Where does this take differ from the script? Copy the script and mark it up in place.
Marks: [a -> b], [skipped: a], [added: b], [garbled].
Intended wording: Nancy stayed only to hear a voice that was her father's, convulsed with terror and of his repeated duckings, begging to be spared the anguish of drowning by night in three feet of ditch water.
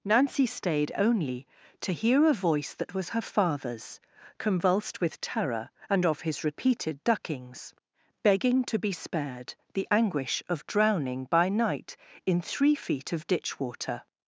Nancy stayed only to hear a voice that was her father's, convulsed with terror and of his repeated duckings, begging to be spared the anguish of drowning by night in three feet of ditch water.